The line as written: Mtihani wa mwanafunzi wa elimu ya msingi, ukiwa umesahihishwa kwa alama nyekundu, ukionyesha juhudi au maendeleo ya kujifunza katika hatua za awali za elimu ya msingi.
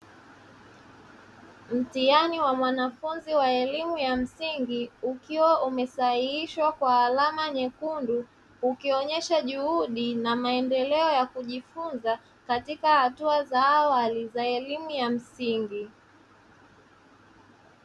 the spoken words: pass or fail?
fail